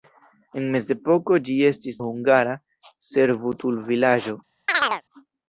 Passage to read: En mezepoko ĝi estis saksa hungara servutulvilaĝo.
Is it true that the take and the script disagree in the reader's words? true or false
true